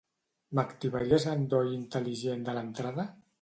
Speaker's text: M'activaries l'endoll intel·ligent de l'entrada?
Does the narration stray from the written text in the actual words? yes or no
no